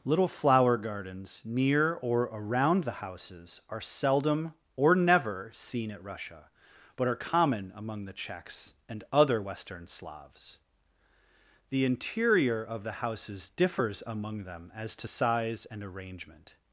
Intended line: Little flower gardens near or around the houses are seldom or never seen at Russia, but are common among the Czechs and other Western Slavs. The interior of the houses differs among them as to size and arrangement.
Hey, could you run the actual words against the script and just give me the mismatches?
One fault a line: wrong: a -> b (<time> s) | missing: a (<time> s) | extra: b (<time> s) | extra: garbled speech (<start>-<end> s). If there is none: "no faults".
no faults